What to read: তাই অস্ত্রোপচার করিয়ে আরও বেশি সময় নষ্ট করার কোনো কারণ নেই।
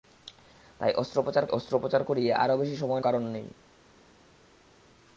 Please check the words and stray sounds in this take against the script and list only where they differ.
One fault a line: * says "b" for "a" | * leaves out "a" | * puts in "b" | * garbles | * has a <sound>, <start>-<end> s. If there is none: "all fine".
* puts in "অস্ত্রোপচার"
* leaves out "নষ্ট করার কোনো"